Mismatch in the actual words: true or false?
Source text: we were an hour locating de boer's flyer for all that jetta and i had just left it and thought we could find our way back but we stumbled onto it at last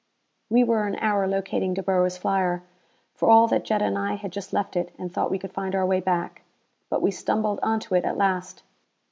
false